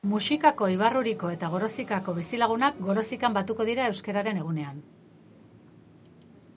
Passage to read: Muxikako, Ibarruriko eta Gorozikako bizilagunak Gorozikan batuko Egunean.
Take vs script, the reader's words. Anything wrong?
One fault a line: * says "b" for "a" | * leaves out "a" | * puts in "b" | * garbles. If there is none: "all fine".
* puts in "dira Euskararen"